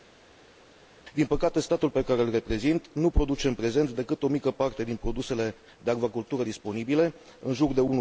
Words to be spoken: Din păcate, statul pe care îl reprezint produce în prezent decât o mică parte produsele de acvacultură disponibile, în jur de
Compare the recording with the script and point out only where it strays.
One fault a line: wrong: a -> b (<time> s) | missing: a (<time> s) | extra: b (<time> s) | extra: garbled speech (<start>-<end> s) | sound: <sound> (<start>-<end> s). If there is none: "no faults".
extra: nu (2.9 s)
extra: din (4.8 s)